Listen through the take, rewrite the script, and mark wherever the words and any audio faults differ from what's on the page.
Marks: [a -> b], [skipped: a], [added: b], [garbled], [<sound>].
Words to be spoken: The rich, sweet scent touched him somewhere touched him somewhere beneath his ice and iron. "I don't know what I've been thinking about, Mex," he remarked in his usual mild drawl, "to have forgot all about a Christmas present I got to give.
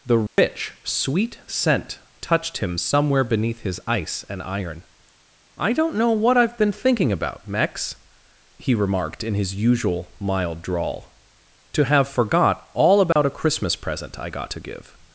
The rich, [dropout] sweet scent touched him somewhere [skipped: touched him somewhere] beneath his ice and iron. "I don't know what I've been thinking about, Mex," he remarked in his usual mild drawl, "to have forgot all about [dropout] a Christmas present I got to give.